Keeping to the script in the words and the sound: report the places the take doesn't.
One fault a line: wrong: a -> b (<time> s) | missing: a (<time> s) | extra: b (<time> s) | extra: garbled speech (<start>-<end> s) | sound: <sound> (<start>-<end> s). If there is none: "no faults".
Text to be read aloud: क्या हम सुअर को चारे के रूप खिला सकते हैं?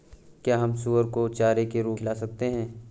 no faults